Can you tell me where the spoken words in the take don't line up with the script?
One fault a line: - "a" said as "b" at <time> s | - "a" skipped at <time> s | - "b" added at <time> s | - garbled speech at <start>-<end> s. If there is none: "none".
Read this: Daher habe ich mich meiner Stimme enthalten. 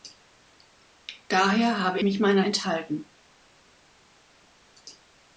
- "ich" skipped at 2.0 s
- "Stimme" skipped at 2.5 s